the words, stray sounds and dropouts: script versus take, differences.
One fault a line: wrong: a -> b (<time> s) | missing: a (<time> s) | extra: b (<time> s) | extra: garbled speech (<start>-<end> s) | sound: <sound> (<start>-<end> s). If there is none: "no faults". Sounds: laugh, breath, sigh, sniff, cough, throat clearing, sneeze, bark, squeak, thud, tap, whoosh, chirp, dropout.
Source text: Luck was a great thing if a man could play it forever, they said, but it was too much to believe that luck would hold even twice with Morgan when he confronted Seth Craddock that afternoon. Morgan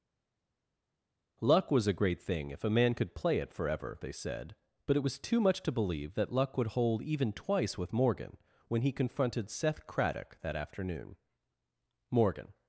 no faults